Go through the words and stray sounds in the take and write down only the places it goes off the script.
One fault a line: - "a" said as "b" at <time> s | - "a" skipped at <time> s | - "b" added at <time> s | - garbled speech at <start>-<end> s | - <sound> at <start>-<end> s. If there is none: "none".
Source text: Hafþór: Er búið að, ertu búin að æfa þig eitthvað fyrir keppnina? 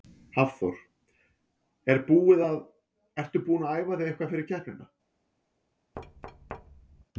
- thud at 5.9-7.0 s